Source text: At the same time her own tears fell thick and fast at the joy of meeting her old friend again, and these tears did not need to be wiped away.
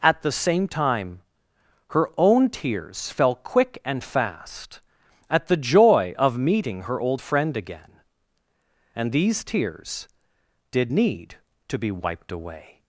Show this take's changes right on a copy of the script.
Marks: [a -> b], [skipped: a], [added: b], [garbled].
At the same time her own tears fell [thick -> quick] and fast at the joy of meeting her old friend again, and these tears did [skipped: not] need to be wiped away.